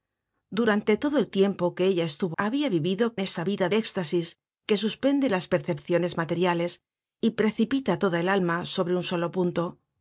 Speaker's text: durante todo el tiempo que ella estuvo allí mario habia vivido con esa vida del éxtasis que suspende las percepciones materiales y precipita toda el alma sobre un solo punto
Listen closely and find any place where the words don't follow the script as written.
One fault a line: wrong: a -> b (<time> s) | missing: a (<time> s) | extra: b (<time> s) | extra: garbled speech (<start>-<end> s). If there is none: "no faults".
missing: allí mario (2.4 s)
missing: con (3.2 s)
missing: del (3.7 s)